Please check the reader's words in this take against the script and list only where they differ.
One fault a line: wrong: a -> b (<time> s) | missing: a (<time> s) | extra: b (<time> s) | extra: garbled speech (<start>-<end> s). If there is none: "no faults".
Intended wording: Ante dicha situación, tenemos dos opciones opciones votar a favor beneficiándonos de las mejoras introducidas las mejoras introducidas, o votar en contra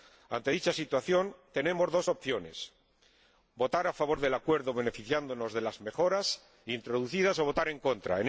missing: opciones (2.7 s)
extra: del Acuerdo (4.2 s)
missing: las mejoras introducidas (7.4 s)